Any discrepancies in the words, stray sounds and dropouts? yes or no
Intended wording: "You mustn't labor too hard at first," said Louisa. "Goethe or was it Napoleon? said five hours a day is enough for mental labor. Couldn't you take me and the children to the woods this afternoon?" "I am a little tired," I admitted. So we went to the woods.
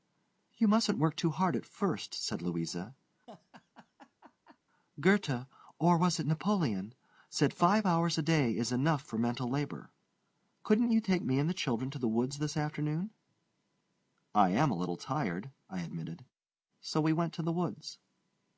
yes